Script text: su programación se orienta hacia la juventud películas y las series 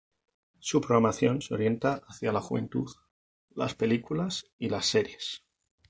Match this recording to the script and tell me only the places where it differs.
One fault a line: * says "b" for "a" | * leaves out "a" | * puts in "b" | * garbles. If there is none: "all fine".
* puts in "las"